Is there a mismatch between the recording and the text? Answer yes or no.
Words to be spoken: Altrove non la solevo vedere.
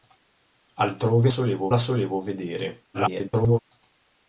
yes